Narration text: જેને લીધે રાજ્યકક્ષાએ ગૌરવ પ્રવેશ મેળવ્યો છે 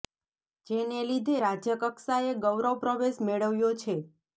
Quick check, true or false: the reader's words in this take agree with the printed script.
true